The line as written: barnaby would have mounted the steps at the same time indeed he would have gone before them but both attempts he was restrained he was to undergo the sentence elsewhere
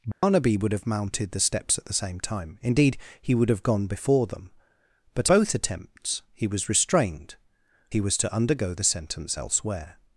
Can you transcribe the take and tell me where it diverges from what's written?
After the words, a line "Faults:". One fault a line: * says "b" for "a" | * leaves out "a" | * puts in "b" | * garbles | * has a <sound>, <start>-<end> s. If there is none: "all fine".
barnaby would have mounted the steps at the same time indeed he would have gone before them but both attempts he was restrained he was to undergo the sentence elsewhere
Faults:
* has a dropout, 0.1-0.2 s